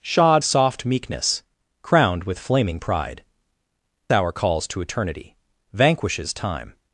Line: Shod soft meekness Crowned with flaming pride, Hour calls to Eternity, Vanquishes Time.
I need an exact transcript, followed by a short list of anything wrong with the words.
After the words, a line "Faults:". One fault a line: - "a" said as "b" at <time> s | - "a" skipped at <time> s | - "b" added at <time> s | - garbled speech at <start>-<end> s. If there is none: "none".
Shod soft meekness Crowned with flaming pride, Hour calls to Eternity, Vanquishes Time.
Faults:
none